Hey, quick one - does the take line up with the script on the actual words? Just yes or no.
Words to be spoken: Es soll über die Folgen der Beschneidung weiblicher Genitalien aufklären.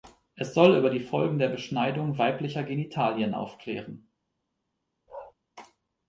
yes